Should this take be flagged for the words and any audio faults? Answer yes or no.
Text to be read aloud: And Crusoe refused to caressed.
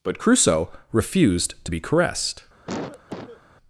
yes